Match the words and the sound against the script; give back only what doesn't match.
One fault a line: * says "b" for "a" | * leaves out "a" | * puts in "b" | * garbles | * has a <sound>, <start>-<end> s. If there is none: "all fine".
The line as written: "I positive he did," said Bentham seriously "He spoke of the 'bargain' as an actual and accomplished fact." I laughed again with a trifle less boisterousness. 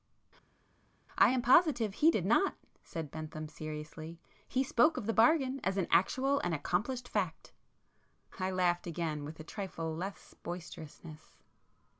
* puts in "am"
* puts in "not"